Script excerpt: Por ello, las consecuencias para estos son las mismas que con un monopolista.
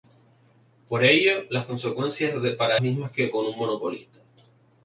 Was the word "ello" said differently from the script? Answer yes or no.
no